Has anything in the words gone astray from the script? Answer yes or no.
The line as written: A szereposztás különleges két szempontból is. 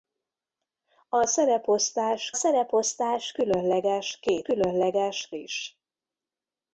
yes